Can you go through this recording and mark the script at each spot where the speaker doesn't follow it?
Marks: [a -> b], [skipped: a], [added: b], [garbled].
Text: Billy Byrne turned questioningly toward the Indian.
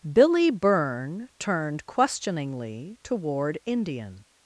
Billy Byrne turned questioningly toward [skipped: the] Indian.